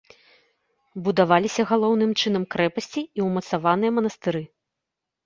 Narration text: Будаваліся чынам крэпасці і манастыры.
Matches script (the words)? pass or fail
fail